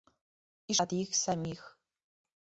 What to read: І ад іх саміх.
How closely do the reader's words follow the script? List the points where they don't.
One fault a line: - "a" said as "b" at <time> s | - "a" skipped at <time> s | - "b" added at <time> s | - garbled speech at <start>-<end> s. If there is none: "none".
none